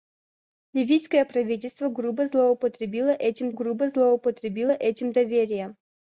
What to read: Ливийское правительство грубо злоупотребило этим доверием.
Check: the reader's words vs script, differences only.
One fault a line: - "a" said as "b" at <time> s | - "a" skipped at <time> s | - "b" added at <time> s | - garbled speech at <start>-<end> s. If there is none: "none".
- "грубо злоупотребило этим" added at 3.5 s